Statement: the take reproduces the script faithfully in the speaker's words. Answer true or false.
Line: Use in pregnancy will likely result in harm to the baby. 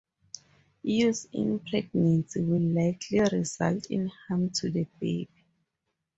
true